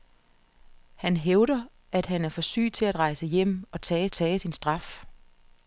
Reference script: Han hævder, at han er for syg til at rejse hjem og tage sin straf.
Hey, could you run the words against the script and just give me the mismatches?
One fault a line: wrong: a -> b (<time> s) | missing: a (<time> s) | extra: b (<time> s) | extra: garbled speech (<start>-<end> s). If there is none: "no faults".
extra: tage (4.1 s)